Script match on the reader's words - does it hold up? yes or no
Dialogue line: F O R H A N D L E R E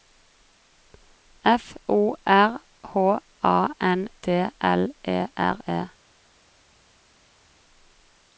yes